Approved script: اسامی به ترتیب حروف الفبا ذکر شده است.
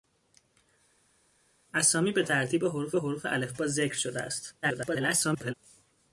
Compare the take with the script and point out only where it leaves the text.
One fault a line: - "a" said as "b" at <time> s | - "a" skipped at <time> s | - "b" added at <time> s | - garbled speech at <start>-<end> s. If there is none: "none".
- "حروف" added at 2.9 s
- garbled speech at 4.6-5.5 s